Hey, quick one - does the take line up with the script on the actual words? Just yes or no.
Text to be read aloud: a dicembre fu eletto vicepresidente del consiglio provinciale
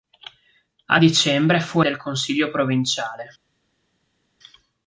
no